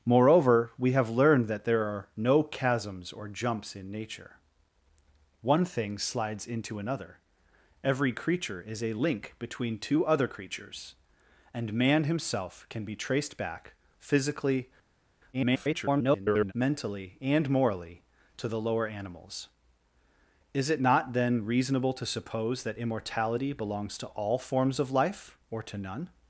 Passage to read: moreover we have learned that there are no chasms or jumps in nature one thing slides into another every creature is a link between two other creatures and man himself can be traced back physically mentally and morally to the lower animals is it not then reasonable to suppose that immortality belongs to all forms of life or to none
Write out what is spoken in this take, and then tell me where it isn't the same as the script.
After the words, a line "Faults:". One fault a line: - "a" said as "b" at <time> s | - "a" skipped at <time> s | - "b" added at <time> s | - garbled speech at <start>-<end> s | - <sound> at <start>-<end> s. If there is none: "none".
moreover we have learned that there are no chasms or jumps in nature one thing slides into another every creature is a link between two other creatures and man himself can be traced back physically [garbled] mentally and morally to the lower animals is it not then reasonable to suppose that immortality belongs to all forms of life or to none
Faults:
- garbled speech at 15.3-16.5 s